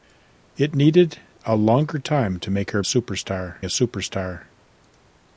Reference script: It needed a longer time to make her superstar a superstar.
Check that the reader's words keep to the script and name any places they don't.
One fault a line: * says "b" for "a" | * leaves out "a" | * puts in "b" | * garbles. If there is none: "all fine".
all fine